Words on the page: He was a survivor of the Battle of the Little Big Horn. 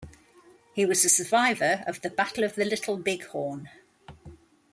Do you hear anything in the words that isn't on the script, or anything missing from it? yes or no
no